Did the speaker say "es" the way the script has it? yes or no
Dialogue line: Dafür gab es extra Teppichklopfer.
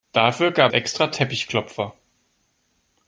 no